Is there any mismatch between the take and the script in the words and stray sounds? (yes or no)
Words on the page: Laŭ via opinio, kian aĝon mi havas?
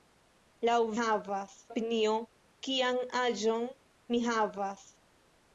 yes